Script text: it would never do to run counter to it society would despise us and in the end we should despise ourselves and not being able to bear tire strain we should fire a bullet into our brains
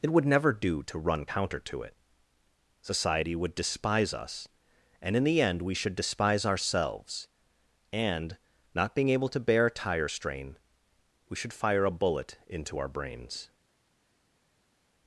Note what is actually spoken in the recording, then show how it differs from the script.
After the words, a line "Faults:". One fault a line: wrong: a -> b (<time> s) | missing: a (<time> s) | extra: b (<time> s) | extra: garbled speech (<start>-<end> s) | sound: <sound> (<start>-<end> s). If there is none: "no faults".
it would never do to run counter to it society would despise us and in the end we should despise ourselves and not being able to bear tire strain we should fire a bullet into our brains
Faults:
no faults